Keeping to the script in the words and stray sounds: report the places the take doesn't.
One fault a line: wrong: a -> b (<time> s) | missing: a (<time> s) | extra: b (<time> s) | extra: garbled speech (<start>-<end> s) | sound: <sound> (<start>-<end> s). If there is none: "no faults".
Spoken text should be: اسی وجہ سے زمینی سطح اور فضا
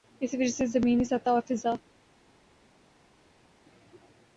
no faults